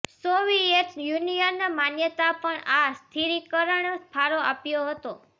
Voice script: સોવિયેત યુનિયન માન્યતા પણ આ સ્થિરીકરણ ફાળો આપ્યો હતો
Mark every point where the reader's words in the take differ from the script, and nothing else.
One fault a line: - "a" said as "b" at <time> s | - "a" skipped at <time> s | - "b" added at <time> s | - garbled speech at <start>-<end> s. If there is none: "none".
none